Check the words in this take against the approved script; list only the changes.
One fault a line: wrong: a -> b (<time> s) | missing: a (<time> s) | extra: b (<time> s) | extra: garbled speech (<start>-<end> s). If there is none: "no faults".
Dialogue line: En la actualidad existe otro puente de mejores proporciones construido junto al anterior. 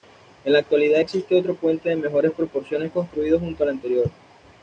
no faults